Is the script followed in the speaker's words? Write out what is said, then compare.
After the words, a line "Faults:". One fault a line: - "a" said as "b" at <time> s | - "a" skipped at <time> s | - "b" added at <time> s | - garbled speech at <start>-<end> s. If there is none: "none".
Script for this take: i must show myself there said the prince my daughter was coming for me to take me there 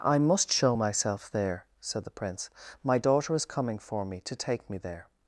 i must show myself there said the prince my daughter is coming for me to take me there
Faults:
- "was" said as "is" at 3.3 s